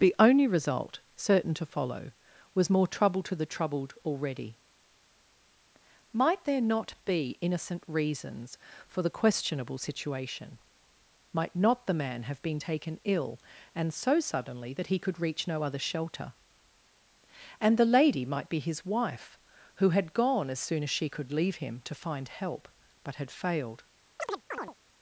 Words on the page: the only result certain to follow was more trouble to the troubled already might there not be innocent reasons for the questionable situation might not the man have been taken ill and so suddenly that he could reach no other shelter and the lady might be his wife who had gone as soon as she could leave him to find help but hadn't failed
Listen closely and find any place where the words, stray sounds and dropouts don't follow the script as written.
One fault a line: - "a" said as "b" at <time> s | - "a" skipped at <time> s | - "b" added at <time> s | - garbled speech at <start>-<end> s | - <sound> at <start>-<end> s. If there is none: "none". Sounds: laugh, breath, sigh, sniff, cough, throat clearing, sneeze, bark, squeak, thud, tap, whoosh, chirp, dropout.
- "hadn't" said as "had" at 23.1 s
- chirp at 24.2-24.7 s